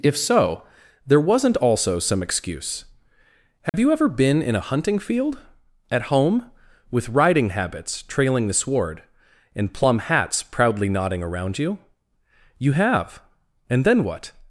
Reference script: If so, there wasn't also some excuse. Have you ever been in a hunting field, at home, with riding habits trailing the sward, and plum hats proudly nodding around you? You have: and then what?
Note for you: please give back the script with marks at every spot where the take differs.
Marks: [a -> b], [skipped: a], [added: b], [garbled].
If so, there wasn't also some excuse. Have you ever been in a hunting field, at home, with riding habits trailing the sward, and plum hats proudly nodding around you? You have: and then what?